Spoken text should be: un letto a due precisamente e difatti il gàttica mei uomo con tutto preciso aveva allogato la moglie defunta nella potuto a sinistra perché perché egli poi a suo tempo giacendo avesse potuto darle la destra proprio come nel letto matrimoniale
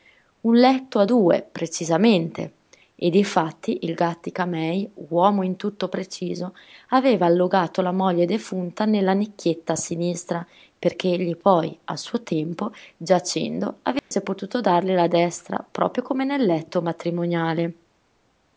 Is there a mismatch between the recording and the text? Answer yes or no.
yes